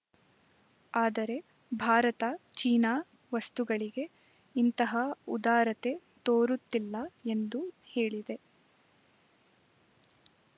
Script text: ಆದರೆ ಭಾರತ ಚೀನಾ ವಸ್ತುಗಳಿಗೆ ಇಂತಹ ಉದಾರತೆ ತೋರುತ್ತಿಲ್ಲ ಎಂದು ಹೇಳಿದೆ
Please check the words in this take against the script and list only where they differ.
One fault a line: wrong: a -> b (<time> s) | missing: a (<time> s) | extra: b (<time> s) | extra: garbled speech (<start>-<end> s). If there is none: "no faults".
no faults